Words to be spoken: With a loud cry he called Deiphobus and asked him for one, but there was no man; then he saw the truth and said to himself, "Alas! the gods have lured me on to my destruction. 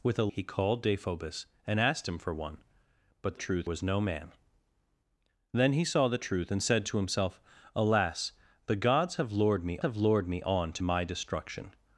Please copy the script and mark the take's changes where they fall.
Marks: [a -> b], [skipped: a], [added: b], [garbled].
With a [skipped: loud cry] he called Deiphobus and asked him for one, but [there -> truth] was no man; then he saw the truth and said to himself, "Alas! the gods have lured me [added: have lured me] on to my destruction.